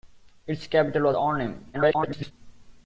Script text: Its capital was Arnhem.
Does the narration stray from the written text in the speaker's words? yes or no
yes